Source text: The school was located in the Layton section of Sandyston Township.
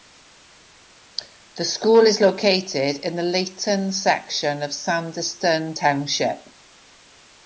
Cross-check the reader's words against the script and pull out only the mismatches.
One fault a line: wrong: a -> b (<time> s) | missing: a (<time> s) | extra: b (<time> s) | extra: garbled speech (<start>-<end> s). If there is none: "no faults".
wrong: was -> is (2.1 s)